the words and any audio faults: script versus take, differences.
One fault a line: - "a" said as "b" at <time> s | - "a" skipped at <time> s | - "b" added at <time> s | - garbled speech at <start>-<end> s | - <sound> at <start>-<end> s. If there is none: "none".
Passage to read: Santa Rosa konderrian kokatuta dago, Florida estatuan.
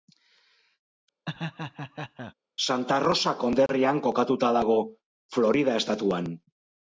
- laugh at 1.3-2.3 s
- dropout at 3.7-3.7 s